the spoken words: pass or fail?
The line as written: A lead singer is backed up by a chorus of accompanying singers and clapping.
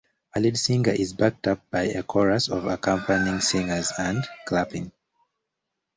pass